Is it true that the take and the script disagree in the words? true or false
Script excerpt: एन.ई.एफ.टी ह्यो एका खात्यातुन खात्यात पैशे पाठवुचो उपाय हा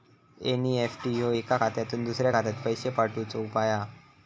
true